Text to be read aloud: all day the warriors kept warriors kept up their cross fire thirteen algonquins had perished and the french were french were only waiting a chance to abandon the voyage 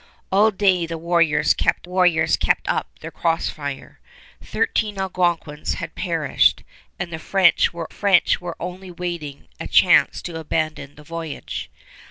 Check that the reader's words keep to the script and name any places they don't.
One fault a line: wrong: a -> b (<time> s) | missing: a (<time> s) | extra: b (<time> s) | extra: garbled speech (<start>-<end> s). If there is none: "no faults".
no faults